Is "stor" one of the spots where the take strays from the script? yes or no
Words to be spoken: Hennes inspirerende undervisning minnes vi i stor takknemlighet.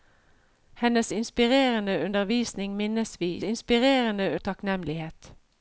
yes